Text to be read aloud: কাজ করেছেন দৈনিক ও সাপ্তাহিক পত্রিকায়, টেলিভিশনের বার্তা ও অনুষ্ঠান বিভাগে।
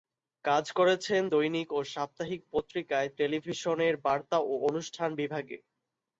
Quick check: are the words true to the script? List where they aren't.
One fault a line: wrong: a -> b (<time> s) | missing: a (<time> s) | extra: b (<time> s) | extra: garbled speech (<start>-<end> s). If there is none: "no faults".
no faults